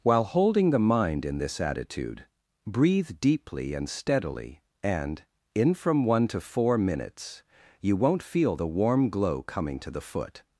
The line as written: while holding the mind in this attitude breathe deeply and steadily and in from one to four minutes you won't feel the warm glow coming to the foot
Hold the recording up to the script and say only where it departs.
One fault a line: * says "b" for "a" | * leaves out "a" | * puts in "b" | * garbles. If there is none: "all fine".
all fine